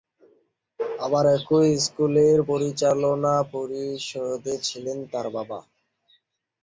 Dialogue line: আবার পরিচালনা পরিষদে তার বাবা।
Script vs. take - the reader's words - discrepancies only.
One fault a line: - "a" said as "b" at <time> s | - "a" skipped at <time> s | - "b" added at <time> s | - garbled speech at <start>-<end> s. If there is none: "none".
- "একই স্কুলের" added at 1.4 s
- "ছিলেন" added at 4.6 s